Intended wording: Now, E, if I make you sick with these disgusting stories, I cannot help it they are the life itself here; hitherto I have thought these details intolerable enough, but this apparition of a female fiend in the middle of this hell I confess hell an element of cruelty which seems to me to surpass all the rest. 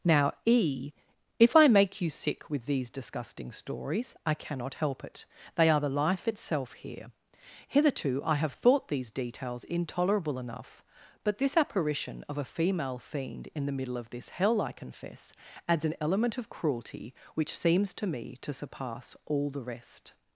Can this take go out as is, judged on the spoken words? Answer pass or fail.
fail